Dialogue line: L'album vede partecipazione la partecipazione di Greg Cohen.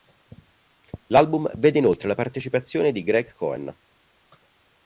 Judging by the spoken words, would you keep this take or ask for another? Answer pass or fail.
fail